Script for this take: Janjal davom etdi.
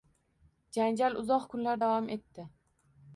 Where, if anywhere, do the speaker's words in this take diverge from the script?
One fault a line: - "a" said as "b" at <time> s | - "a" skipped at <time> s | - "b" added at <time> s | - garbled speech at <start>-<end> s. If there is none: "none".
- "uzoq kunlar" added at 1.2 s